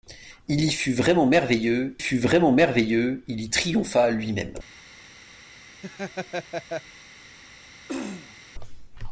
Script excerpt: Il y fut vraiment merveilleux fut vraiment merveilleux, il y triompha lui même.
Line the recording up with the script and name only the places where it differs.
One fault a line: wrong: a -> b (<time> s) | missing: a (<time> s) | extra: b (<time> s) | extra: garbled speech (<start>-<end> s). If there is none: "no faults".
no faults